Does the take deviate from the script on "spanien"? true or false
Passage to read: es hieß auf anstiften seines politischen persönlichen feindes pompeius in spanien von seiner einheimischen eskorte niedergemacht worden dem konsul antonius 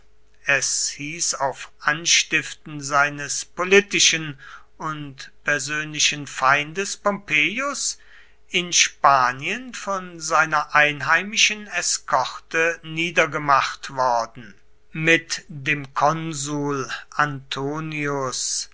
false